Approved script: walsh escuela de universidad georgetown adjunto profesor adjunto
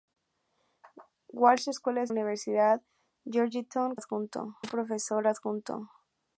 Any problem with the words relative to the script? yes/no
no